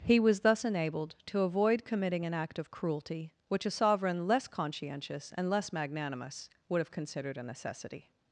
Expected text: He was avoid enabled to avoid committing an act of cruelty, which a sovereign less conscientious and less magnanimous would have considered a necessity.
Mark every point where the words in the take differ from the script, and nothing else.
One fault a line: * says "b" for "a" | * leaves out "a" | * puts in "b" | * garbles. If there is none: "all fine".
* says "thus" for "avoid"